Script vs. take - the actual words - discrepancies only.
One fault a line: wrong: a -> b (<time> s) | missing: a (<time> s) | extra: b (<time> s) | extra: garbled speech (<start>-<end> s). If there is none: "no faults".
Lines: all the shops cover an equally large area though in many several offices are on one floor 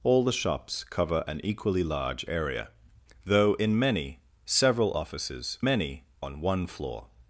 wrong: are -> many (5.6 s)